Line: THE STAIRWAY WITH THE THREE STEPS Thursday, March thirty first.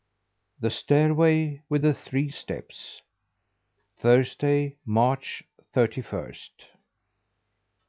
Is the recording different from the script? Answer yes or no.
no